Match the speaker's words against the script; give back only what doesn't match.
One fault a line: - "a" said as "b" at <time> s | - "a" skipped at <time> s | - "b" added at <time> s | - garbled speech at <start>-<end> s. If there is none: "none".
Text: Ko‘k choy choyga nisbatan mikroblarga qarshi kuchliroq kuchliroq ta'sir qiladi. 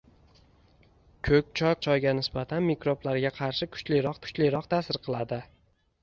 none